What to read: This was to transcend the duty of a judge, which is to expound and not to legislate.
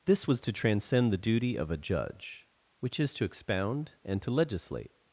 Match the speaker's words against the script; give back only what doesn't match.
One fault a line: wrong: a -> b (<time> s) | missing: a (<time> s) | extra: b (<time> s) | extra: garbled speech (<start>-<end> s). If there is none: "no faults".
missing: not (4.2 s)